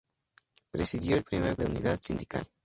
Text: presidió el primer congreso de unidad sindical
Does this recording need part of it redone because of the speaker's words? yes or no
yes